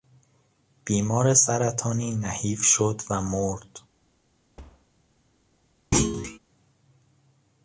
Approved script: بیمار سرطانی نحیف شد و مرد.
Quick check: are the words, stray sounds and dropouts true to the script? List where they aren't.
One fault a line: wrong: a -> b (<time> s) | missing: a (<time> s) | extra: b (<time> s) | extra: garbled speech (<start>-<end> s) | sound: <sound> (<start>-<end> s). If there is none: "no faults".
sound: thud (4.6-4.9 s)
sound: thud (5.9-6.4 s)